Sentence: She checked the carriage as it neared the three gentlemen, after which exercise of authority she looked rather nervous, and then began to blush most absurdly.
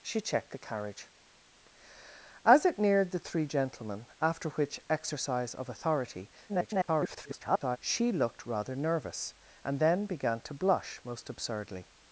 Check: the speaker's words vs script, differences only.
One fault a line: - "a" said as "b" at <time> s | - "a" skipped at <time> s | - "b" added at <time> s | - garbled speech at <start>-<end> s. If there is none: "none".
- garbled speech at 6.5-7.8 s